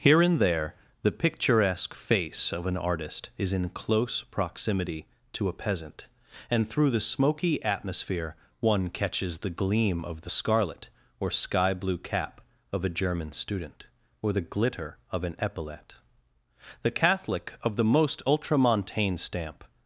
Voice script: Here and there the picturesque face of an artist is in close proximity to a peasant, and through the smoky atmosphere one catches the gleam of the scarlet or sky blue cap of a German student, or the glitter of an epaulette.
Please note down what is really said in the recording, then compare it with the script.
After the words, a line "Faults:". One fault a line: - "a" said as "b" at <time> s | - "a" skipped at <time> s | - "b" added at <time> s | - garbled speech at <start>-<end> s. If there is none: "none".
Here and there the picturesque face of an artist is in close proximity to a peasant, and through the smoky atmosphere one catches the gleam of the scarlet or sky blue cap of a German student, or the glitter of an epaulette. The Catholic of the most ultramontane stamp
Faults:
- "The Catholic of the most ultramontane stamp" added at 16.8 s